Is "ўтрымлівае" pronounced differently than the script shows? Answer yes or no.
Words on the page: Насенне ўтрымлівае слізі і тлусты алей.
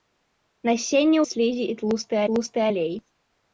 yes